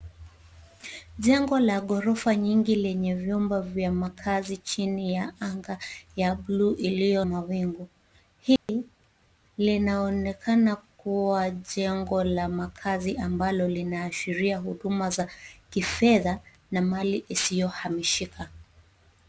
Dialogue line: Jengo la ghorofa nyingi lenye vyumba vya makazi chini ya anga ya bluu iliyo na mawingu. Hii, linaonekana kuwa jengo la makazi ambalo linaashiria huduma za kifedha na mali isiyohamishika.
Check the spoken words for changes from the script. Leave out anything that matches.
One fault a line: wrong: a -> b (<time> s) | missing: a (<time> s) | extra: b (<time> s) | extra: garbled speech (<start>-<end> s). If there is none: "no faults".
missing: na (7.3 s)